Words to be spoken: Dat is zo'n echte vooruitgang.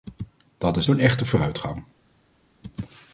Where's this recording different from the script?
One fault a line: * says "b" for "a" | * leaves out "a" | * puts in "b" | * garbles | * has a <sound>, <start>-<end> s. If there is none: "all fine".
all fine